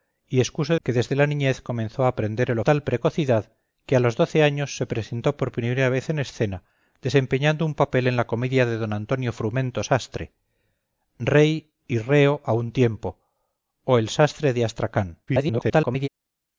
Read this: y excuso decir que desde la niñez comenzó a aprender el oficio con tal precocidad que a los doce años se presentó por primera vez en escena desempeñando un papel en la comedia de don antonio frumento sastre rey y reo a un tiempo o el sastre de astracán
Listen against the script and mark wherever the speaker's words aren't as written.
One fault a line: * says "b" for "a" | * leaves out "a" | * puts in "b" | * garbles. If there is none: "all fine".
* leaves out "decir"
* leaves out "oficio con"
* garbles